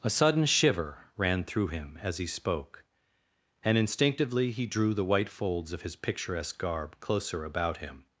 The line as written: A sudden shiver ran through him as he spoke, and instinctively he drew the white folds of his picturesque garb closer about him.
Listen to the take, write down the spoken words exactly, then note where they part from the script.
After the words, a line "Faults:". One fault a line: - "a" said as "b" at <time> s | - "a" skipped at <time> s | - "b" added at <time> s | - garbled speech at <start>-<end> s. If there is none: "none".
A sudden shiver ran through him as he spoke, and instinctively he drew the white folds of his picturesque garb closer about him.
Faults:
none